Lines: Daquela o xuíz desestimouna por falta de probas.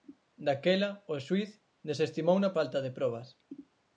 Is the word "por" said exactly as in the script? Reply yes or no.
no